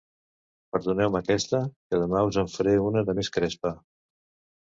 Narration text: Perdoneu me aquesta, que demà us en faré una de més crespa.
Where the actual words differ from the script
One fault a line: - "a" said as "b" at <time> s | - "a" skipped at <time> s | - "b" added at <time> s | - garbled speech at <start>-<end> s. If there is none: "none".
none